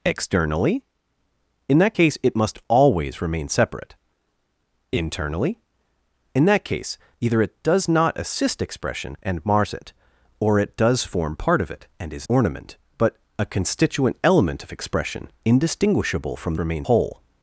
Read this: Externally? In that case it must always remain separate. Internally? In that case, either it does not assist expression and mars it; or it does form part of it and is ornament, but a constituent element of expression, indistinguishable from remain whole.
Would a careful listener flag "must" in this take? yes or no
no